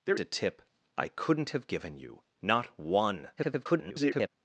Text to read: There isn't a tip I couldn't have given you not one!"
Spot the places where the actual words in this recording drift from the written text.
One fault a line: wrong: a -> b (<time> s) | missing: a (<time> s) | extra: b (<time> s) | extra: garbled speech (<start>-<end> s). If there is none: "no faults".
missing: isn't (0.2 s)
extra: garbled speech (3.4-4.3 s)